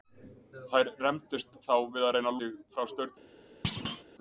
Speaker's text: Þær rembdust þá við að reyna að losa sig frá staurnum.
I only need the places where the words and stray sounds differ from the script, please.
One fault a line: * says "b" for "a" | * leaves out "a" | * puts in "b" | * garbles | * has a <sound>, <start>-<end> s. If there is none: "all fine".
* leaves out "losa"
* has a thud, 3.6-4.0 s